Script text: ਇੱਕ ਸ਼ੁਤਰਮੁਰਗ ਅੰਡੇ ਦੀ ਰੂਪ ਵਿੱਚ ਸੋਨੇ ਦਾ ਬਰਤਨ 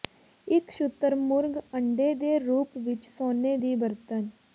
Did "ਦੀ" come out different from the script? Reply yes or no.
yes